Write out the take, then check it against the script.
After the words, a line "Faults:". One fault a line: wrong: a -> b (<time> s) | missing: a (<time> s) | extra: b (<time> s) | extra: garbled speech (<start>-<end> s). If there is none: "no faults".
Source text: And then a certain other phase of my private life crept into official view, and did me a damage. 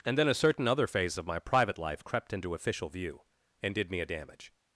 And then a certain other phase of my private life crept into official view, and did me a damage.
Faults:
no faults